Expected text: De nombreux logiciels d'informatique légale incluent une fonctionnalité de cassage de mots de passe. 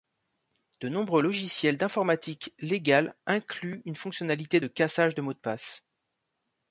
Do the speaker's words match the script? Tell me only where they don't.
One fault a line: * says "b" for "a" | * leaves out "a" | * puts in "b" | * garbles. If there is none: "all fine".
all fine